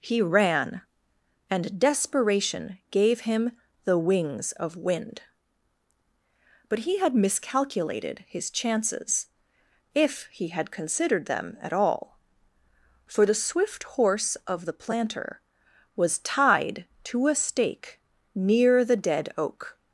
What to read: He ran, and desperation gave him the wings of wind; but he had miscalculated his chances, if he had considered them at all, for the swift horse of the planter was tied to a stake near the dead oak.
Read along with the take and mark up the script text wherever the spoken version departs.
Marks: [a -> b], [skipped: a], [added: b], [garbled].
He ran, and desperation gave him the wings of wind; but he had miscalculated his chances, if he had considered them at all, for the swift horse of the planter was tied to a stake near the dead oak.